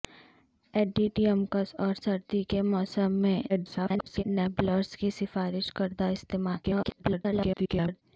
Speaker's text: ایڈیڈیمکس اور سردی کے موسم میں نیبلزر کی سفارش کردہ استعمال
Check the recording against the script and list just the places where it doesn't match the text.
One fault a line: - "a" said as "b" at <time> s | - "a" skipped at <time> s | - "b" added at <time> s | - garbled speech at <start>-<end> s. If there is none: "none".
- garbled speech at 3.5-4.2 s
- garbled speech at 6.6-8.0 s